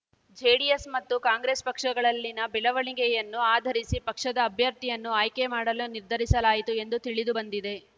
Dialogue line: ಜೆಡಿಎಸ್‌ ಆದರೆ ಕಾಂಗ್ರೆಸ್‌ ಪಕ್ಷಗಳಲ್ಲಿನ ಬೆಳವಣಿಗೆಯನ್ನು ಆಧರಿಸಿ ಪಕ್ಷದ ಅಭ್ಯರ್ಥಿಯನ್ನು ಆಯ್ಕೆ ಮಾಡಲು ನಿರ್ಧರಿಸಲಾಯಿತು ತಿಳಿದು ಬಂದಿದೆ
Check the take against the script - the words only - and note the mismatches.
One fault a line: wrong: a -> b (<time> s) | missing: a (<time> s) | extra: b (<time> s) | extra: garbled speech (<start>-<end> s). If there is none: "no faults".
wrong: ಆದರೆ -> ಮತ್ತು (0.9 s)
extra: ಎಂದು (6.8 s)